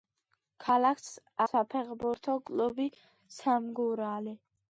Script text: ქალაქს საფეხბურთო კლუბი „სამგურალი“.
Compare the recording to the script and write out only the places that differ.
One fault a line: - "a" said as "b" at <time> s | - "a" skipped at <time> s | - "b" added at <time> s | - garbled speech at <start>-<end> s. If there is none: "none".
none